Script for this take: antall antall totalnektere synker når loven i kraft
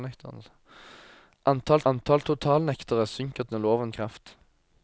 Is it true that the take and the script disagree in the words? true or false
false